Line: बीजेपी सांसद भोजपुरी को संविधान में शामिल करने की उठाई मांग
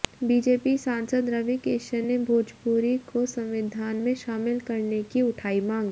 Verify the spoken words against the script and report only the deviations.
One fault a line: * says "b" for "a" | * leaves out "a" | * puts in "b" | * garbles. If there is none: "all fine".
* puts in "रवि किशन ने"